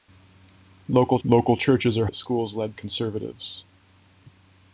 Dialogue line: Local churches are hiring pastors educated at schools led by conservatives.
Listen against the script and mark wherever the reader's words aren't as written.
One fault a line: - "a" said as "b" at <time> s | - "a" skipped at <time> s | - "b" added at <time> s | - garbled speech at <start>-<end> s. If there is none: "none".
- "local" added at 1.2 s
- "hiring pastors educated" skipped at 2.1 s
- "by" skipped at 2.7 s